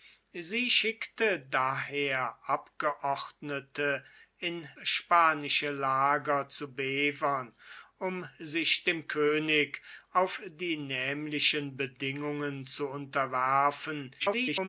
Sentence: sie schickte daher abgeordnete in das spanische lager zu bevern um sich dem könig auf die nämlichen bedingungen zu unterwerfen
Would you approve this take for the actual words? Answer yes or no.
no